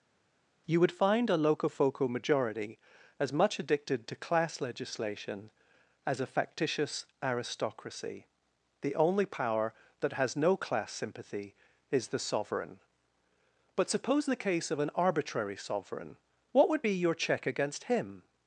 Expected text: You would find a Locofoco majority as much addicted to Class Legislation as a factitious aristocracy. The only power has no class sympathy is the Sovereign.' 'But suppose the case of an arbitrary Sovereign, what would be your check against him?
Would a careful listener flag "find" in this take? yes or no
no